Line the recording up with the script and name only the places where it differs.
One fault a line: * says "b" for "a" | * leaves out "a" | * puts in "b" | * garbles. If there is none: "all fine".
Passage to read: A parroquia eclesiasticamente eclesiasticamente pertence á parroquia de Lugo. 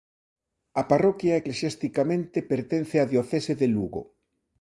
* leaves out "eclesiasticamente"
* says "diocese" for "parroquia"